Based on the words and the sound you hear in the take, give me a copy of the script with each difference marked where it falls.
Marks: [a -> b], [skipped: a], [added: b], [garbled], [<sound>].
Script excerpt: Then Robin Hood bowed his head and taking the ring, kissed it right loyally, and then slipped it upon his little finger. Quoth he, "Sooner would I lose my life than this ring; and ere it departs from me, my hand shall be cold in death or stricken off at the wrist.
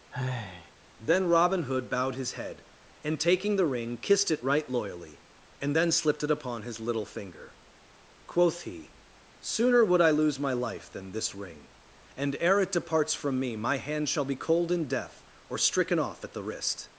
[sigh] Then Robin Hood bowed his head and taking the ring, kissed it right loyally, and then slipped it upon his little finger. Quoth he, "Sooner would I lose my life than this ring; and ere it departs from me, my hand shall be cold in death or stricken off at the wrist.